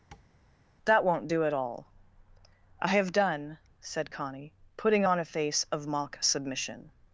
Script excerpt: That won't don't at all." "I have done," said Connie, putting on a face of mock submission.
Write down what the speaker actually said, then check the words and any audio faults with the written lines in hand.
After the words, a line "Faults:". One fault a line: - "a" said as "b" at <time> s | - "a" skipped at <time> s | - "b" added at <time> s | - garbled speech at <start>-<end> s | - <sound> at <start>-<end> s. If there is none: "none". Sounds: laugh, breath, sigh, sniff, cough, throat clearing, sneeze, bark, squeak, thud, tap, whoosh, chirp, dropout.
That won't do at all." "I have done," said Connie, putting on a face of mock submission.
Faults:
- tap at 0.1-0.3 s
- "don't" said as "do" at 1.3 s